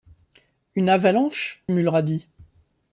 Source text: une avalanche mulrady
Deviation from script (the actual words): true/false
false